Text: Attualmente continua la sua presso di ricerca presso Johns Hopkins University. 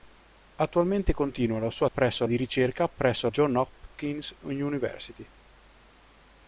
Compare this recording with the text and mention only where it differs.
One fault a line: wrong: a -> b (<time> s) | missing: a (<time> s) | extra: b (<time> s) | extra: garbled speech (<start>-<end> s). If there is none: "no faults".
no faults